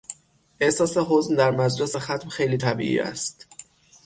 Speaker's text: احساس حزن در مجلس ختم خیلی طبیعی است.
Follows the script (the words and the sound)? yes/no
yes